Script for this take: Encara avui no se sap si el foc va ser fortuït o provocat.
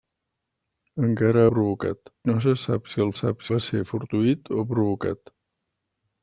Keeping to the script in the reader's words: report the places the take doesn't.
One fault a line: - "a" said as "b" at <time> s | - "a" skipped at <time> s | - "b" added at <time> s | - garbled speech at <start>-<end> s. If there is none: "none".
- "avui" said as "provocat" at 1.6 s
- "foc" said as "sap" at 3.2 s